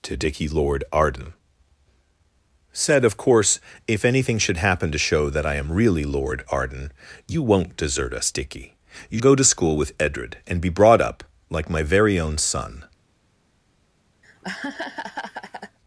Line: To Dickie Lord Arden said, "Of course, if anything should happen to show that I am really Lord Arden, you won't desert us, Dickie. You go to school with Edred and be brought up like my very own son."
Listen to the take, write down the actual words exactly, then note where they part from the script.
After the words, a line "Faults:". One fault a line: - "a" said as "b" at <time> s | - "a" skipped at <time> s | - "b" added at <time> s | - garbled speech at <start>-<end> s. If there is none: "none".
To Dickie Lord Arden said, "Of course, if anything should happen to show that I am really Lord Arden, you won't desert us, Dickie. You go to school with Edred and be brought up like my very own son."
Faults:
none